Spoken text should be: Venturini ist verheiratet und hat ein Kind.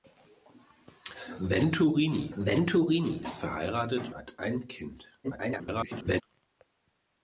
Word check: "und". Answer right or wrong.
wrong